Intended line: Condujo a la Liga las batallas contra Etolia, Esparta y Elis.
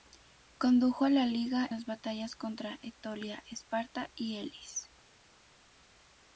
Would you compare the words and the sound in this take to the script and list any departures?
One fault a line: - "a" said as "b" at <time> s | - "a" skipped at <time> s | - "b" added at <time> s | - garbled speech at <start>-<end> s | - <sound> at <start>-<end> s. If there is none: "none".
none